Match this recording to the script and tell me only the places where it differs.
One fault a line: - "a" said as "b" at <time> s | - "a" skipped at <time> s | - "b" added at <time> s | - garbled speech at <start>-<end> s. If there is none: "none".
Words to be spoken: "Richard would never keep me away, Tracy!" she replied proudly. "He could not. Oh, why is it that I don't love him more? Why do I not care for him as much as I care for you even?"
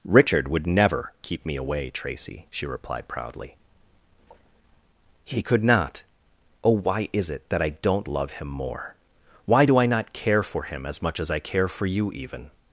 none